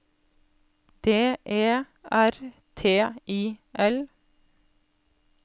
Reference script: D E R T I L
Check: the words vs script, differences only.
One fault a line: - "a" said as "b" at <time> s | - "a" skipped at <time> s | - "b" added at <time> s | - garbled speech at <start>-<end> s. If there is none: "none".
none